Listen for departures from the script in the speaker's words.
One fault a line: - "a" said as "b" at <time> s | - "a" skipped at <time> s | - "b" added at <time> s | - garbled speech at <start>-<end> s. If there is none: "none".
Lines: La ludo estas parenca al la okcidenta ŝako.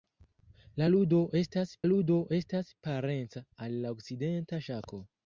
- "ludo estas" added at 1.9 s